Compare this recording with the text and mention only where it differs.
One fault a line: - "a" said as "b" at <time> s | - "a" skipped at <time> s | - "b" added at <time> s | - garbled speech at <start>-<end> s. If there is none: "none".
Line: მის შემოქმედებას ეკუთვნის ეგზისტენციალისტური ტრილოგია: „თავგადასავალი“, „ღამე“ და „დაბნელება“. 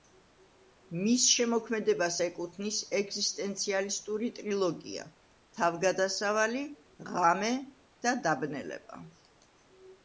none